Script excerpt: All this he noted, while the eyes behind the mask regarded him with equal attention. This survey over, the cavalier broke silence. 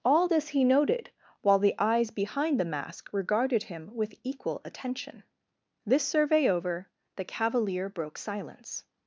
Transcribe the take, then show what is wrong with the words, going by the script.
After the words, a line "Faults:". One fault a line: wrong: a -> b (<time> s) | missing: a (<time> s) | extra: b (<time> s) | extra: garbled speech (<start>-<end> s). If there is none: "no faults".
All this he noted, while the eyes behind the mask regarded him with equal attention. This survey over, the cavalier broke silence.
Faults:
no faults